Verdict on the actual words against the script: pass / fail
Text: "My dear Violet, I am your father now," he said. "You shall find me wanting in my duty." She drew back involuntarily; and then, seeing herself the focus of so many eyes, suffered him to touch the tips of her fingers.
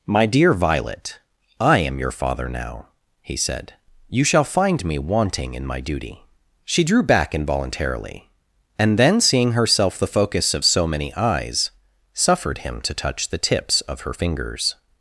pass